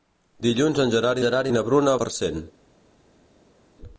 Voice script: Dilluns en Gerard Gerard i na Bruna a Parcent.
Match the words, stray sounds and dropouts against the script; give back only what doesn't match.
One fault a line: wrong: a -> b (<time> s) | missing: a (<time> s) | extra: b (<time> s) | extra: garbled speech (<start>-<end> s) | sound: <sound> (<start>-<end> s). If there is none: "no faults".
no faults